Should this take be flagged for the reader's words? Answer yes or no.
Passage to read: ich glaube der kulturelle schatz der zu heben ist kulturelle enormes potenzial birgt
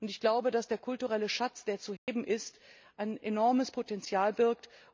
yes